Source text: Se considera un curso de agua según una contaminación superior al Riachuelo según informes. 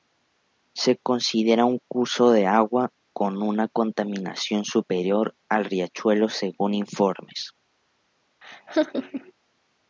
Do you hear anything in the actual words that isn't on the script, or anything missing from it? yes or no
yes